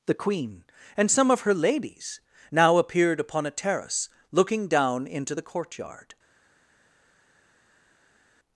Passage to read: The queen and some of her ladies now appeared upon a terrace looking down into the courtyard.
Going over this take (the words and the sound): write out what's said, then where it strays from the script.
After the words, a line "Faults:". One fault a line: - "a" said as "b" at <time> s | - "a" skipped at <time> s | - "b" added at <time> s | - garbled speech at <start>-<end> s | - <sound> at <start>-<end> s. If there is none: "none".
The queen and some of her ladies now appeared upon a terrace looking down into the courtyard.
Faults:
none